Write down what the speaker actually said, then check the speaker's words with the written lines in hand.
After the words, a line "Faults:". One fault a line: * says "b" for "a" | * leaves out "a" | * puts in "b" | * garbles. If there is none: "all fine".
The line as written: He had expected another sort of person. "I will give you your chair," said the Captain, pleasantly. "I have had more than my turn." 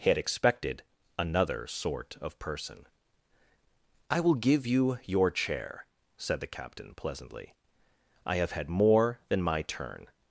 He had expected another sort of person. "I will give you your chair," said the Captain, pleasantly. "I have had more than my turn."
Faults:
all fine